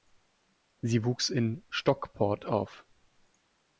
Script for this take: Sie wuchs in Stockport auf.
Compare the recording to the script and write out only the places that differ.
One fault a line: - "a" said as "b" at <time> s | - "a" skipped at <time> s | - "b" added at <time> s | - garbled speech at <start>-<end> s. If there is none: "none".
none